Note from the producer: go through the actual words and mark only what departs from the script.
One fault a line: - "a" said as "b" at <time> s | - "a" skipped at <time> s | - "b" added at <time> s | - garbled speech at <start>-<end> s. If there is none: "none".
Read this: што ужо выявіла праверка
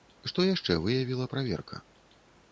- "ужо" said as "яшчэ" at 0.5 s